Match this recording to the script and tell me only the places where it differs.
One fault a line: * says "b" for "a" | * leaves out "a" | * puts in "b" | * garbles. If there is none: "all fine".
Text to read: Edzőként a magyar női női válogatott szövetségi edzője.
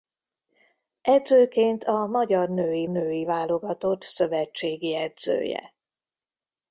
all fine